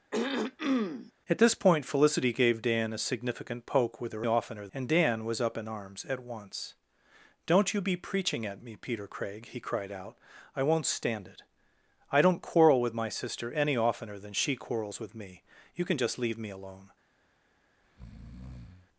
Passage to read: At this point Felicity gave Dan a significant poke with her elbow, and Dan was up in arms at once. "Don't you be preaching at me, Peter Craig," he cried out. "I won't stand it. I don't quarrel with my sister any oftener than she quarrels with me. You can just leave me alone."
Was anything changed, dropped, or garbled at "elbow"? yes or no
yes